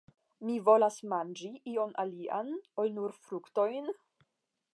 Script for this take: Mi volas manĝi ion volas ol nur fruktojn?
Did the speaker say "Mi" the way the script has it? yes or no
yes